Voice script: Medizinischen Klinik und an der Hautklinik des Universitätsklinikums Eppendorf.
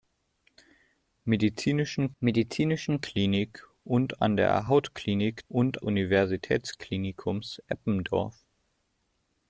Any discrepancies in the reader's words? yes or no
yes